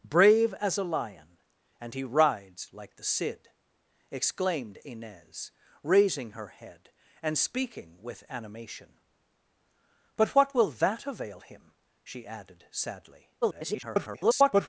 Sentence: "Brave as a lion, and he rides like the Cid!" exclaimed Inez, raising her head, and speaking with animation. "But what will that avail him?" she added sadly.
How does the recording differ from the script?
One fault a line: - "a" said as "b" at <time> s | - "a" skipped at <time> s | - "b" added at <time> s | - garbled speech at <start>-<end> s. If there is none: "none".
- garbled speech at 13.4-14.7 s